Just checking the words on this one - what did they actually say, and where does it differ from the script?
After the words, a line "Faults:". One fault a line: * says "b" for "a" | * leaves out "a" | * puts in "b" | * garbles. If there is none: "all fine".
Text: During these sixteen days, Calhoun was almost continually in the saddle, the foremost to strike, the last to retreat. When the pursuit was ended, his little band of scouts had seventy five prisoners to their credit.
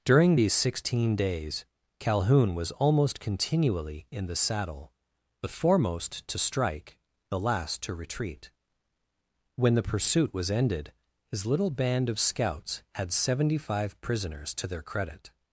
During these sixteen days, Calhoun was almost continually in the saddle, the foremost to strike, the last to retreat. When the pursuit was ended, his little band of scouts had seventy five prisoners to their credit.
Faults:
all fine